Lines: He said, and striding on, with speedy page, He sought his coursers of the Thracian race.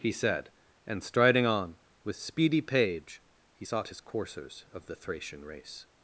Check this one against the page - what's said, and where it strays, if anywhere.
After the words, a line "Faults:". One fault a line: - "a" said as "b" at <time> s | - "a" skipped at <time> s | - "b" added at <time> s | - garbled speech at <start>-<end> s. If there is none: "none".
He said, and striding on, with speedy page, He sought his coursers of the Thracian race.
Faults:
none